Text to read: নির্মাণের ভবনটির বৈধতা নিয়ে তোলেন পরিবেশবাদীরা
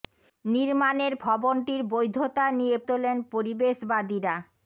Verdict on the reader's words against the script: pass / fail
pass